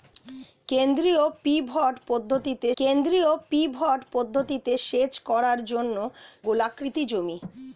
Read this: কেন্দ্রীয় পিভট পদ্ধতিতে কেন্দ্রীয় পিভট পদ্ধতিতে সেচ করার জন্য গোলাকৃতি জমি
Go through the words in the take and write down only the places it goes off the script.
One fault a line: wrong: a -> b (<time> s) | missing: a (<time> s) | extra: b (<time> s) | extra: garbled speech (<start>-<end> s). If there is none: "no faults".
no faults